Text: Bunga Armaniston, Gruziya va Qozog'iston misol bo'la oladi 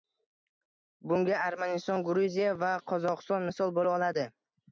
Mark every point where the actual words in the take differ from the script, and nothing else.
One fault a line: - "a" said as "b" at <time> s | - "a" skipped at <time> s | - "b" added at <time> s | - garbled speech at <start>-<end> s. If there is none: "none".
none